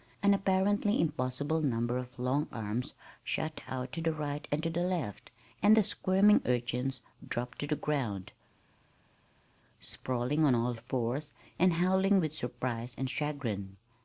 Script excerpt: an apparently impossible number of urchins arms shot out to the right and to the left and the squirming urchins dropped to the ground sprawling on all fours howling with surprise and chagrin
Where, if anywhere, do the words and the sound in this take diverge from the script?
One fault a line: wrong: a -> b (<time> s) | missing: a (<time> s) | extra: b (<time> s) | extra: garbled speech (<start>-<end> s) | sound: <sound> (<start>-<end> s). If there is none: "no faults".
wrong: urchins -> long (2.2 s)
extra: and (11.6 s)